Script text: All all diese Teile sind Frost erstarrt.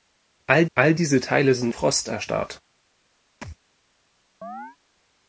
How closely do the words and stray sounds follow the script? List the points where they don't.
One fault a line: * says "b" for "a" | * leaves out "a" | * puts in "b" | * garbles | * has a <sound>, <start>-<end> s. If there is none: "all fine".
* has a thud, 3.4-3.6 s
* has a chirp, 4.4-4.8 s